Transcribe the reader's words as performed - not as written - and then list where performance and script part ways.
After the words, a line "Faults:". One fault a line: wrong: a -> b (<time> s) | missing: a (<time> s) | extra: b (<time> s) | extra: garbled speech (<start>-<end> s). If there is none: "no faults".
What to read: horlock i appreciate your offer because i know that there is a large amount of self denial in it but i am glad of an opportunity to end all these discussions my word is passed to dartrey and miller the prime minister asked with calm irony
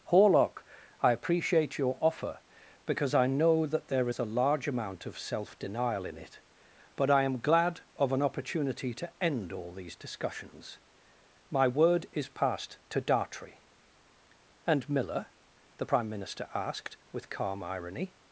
horlock i appreciate your offer because i know that there is a large amount of self denial in it but i am glad of an opportunity to end all these discussions my word is passed to dartrey and miller the prime minister asked with calm irony
Faults:
no faults